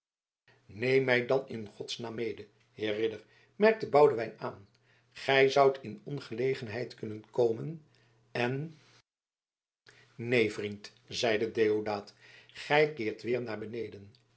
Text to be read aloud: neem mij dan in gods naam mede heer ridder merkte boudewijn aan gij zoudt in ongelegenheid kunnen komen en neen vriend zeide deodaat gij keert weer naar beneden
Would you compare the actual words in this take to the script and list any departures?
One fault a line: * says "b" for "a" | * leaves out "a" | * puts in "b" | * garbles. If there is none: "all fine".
all fine